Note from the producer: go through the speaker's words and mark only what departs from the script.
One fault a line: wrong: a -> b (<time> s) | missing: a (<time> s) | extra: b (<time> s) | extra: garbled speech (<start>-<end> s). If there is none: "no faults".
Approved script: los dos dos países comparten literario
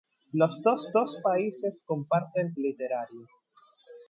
no faults